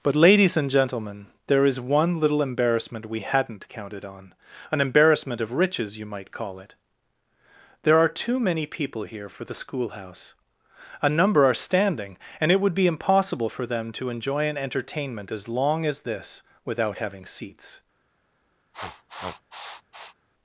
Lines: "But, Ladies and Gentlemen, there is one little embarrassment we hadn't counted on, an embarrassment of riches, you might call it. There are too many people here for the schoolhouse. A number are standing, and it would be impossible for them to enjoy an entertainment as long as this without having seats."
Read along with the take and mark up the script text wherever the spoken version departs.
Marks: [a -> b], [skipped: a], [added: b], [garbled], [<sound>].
"But, Ladies and Gentlemen, there is one little embarrassment we hadn't counted on, an embarrassment of riches, you might call it. There are too many people here for the schoolhouse. A number are standing, and it would be impossible for them to enjoy an entertainment as long as this without having seats." [sniff]